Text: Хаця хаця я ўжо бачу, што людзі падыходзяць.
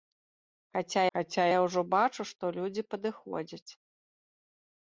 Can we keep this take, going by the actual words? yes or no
yes